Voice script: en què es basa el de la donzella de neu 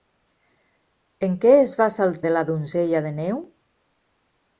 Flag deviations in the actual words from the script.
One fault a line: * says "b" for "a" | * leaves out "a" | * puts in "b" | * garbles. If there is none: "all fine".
all fine